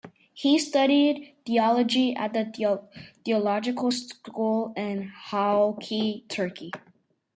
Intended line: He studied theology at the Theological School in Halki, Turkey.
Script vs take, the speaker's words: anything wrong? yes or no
no